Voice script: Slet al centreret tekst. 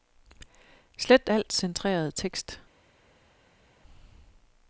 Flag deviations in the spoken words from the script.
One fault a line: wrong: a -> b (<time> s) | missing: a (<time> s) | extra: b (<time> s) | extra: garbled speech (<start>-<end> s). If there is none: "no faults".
no faults